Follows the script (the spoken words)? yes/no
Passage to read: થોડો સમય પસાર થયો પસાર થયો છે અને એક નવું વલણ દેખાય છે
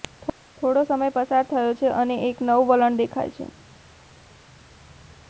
no